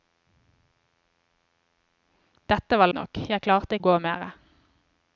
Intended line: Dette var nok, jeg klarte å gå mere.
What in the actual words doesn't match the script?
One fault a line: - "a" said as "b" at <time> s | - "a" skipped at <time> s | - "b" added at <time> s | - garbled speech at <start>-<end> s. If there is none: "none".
none